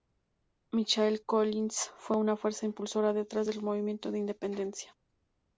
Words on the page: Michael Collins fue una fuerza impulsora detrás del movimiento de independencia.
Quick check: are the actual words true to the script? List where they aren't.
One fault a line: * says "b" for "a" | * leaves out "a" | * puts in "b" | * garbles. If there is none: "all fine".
all fine